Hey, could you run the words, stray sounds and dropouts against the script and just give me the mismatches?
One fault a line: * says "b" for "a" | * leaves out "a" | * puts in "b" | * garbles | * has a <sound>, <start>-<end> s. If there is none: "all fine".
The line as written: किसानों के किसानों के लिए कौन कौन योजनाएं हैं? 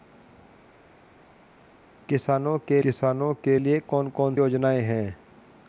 all fine